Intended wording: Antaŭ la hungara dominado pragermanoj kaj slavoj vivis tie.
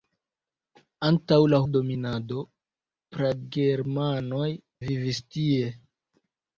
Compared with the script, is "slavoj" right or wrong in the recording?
wrong